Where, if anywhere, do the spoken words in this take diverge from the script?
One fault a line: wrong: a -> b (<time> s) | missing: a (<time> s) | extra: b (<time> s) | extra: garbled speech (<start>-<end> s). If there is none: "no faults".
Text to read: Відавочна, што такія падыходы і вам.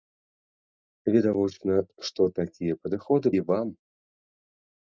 no faults